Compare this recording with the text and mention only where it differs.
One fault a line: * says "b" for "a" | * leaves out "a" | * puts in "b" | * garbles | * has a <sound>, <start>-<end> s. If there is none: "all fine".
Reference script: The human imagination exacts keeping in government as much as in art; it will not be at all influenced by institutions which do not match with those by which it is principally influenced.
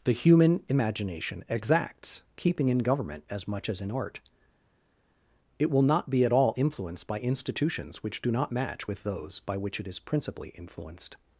all fine